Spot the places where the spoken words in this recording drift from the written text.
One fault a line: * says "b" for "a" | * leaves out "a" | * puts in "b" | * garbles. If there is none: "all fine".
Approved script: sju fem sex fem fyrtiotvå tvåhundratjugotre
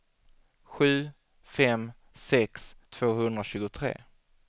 * leaves out "fem fyrtiotvå"